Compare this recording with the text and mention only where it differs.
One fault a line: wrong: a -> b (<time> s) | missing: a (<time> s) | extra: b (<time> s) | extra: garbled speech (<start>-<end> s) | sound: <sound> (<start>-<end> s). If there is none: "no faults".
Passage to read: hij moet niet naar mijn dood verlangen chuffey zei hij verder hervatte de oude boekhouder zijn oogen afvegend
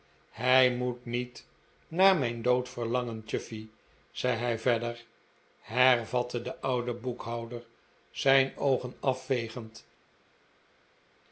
no faults